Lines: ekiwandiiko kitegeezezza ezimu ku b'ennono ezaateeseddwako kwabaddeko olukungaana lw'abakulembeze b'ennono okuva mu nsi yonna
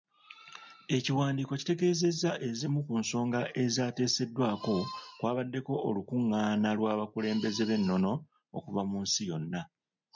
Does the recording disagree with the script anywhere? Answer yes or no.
yes